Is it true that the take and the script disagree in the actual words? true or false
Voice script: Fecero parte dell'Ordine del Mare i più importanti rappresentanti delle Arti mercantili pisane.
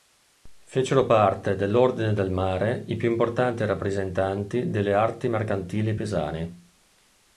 false